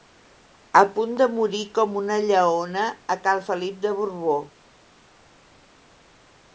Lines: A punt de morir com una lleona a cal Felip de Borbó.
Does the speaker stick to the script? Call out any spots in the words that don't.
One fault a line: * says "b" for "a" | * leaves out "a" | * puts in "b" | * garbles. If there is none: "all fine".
all fine